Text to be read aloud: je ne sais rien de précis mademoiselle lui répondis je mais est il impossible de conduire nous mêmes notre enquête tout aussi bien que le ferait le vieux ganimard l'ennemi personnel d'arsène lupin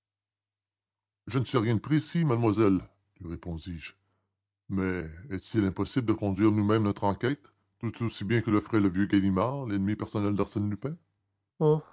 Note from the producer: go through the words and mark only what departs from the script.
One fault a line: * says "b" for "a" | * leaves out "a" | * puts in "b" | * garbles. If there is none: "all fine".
all fine